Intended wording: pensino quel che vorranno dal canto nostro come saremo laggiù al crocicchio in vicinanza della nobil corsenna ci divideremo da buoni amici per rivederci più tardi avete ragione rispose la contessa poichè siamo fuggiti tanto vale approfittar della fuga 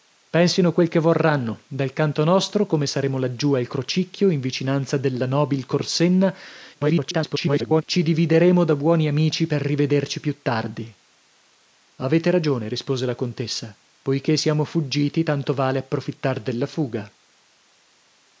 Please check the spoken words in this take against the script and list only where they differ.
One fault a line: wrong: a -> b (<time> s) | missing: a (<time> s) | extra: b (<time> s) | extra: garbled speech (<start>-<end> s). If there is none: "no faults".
extra: garbled speech (6.7-7.8 s)